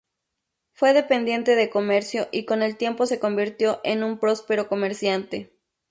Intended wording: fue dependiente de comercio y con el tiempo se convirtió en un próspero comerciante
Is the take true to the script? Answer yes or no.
yes